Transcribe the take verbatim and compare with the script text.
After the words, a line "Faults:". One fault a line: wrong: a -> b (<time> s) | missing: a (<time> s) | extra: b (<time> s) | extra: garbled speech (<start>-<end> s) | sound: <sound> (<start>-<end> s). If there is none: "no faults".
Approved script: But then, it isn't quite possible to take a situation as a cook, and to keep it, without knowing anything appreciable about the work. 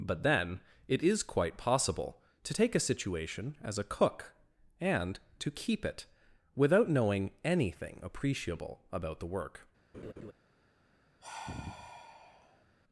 But then, it is quite possible to take a situation as a cook, and to keep it, without knowing anything appreciable about the work.
Faults:
wrong: isn't -> is (1.0 s)
sound: laugh (9.9-10.3 s)
sound: sigh (11.2-12.7 s)